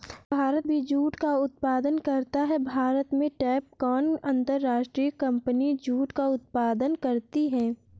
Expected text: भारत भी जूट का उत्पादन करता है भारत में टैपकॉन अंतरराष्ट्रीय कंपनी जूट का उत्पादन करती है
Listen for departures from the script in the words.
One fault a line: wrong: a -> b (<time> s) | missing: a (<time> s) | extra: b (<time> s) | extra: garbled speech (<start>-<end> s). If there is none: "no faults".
no faults